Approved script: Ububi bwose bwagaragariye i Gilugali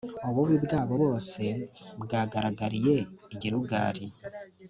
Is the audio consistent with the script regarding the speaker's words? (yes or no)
no